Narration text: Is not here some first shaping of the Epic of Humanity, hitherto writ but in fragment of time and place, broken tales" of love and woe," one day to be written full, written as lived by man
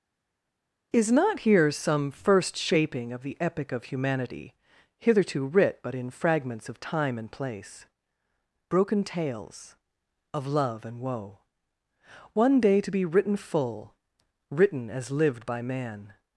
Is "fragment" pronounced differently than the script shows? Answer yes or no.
yes